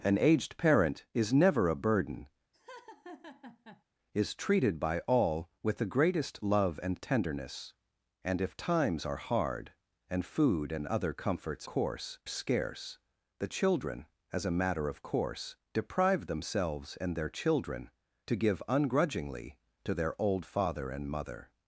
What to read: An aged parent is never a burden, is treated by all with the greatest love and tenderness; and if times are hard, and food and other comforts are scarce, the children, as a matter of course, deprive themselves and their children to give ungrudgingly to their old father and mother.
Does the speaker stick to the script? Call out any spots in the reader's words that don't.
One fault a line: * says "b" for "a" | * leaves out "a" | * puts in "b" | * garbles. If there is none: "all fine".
* says "course" for "are"